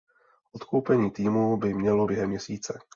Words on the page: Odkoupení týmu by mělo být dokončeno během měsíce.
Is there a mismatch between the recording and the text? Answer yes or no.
yes